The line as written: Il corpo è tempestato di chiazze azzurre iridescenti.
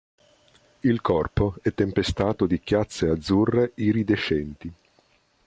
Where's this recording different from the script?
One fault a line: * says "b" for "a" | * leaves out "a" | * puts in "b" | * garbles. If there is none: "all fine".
all fine